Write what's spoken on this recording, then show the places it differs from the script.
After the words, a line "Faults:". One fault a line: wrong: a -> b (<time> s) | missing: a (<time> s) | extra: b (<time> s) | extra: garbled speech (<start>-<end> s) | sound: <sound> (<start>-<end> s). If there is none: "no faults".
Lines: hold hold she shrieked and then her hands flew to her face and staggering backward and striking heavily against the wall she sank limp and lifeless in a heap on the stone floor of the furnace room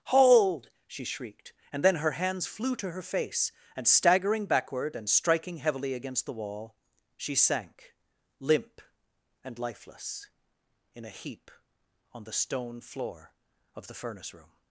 hold she shrieked and then her hands flew to her face and staggering backward and striking heavily against the wall she sank limp and lifeless in a heap on the stone floor of the furnace room
Faults:
missing: hold (0.7 s)